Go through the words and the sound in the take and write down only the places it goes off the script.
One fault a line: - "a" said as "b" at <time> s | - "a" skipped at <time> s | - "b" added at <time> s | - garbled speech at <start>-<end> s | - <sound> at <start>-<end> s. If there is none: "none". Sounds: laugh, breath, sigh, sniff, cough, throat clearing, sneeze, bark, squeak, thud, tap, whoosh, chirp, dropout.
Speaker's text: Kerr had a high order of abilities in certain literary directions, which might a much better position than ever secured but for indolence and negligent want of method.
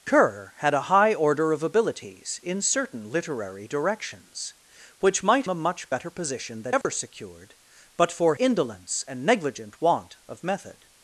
- dropout at 6.8-6.8 s